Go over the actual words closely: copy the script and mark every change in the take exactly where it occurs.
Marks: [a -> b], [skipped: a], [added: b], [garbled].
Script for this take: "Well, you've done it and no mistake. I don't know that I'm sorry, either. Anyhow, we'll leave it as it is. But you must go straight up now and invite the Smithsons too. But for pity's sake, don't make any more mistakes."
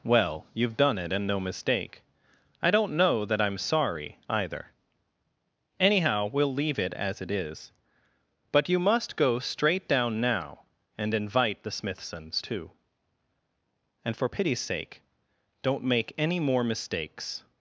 "Well, you've done it and no mistake. I don't know that I'm sorry, either. Anyhow, we'll leave it as it is. But you must go straight [up -> down] now and invite the Smithsons too. [But -> And] for pity's sake, don't make any more mistakes."